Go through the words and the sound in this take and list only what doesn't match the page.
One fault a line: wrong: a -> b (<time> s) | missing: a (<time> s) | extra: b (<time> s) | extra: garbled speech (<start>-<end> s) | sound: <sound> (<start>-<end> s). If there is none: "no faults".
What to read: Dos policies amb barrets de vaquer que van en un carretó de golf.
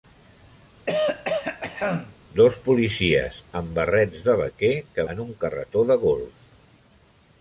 sound: throat clearing (0.9-2.1 s)
missing: van (5.1 s)